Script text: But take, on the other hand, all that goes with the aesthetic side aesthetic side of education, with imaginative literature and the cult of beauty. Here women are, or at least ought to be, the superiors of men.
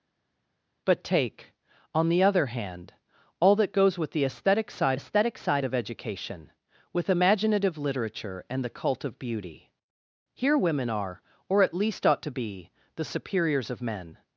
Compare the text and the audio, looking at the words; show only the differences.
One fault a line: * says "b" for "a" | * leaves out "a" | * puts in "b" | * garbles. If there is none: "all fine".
all fine